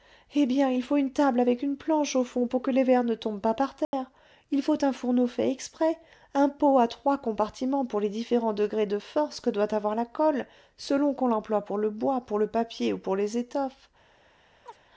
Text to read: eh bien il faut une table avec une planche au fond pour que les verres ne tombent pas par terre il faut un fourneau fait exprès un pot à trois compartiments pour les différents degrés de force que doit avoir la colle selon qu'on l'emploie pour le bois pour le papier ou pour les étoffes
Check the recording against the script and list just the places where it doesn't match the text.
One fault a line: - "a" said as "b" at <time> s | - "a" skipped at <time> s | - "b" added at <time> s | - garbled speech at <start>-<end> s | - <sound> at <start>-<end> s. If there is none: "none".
- dropout at 3.8-3.9 s
- chirp at 14.7-14.8 s